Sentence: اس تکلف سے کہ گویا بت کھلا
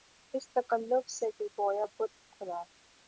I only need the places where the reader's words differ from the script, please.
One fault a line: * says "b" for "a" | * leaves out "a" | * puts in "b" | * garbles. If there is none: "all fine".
all fine